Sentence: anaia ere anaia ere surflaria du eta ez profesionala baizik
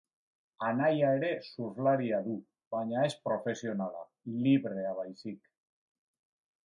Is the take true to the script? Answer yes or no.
no